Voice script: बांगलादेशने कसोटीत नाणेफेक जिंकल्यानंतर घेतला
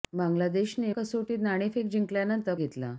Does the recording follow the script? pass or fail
pass